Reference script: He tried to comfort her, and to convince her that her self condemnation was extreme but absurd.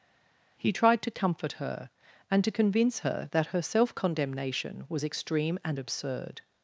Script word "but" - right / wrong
wrong